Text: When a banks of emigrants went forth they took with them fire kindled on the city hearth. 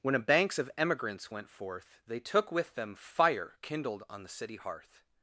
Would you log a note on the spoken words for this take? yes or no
no